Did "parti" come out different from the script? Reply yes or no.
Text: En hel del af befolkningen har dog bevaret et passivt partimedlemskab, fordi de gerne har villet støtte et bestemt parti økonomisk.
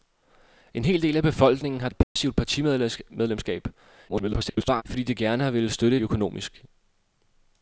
yes